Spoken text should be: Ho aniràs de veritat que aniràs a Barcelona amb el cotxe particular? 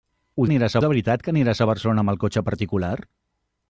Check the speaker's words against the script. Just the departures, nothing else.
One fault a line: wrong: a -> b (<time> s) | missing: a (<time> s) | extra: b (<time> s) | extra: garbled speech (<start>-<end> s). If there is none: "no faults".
no faults